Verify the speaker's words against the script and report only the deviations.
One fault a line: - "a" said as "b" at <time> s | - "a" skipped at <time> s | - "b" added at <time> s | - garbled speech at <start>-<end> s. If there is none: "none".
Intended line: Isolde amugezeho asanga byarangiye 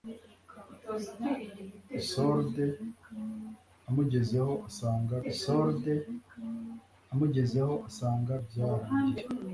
- "isolde amugezeho asanga" added at 5.3 s